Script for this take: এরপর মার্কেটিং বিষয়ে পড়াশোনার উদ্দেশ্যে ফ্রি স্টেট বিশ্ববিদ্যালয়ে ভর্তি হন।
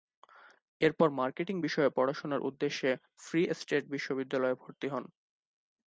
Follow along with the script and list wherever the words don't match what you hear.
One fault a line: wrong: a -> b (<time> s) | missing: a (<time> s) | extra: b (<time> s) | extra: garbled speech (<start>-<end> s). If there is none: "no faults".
no faults